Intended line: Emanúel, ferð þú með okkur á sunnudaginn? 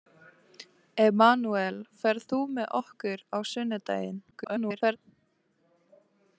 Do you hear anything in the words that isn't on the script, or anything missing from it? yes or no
yes